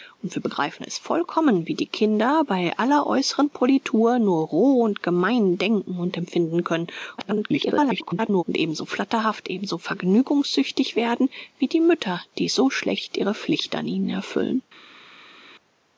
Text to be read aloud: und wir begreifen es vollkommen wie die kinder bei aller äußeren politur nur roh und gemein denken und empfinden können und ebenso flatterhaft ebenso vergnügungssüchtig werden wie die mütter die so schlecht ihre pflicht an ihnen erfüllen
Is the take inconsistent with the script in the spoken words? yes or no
yes